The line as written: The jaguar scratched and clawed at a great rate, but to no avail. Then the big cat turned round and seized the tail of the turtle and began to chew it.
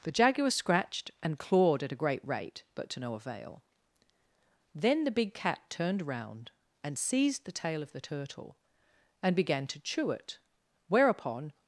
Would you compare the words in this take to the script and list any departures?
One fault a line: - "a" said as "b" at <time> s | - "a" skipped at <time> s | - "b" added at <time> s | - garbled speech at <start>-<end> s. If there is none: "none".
- "Whereupon" added at 10.9 s